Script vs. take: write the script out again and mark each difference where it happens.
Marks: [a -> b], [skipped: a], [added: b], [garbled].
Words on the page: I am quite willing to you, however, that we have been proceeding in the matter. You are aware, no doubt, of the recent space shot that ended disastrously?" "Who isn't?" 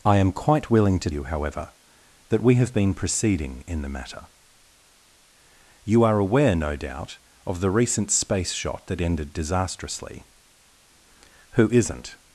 I am quite willing to you, however, that we have been proceeding in the matter. You are aware, no doubt, of the recent space shot that ended disastrously?" "Who isn't?"